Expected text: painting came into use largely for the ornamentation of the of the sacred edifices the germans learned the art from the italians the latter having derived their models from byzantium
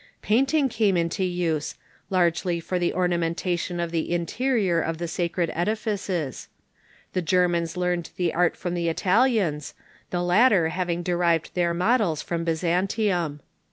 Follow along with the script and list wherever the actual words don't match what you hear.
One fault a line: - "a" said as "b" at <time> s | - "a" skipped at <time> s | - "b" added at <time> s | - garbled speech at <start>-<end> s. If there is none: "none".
- "interior" added at 4.1 s